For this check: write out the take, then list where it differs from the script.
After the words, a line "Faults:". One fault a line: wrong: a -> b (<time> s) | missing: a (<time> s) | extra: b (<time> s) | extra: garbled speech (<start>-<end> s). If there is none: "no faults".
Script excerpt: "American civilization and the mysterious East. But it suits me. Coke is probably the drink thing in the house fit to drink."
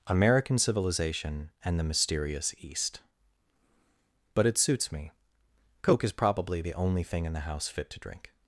"American civilization and the mysterious East. But it suits me. Coke is probably the only thing in the house fit to drink."
Faults:
wrong: drink -> only (6.7 s)